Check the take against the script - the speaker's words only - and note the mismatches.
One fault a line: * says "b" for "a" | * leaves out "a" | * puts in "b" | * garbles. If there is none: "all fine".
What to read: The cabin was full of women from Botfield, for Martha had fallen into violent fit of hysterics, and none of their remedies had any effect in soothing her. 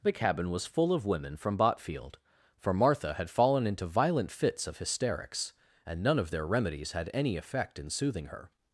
* says "fits" for "fit"